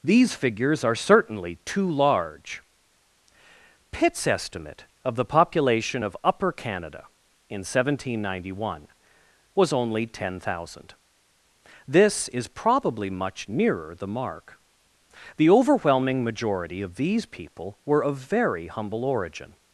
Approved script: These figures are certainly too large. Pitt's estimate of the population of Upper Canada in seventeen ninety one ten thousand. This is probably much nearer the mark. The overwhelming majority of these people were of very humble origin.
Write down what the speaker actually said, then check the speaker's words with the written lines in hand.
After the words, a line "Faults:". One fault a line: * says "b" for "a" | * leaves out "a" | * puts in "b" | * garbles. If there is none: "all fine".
These figures are certainly too large. Pitt's estimate of the population of Upper Canada in seventeen ninety one was only ten thousand. This is probably much nearer the mark. The overwhelming majority of these people were of very humble origin.
Faults:
* puts in "was only"